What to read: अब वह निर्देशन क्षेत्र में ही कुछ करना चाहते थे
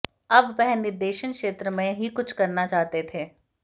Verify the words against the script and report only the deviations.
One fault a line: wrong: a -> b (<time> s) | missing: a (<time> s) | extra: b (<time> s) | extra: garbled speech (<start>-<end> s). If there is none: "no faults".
no faults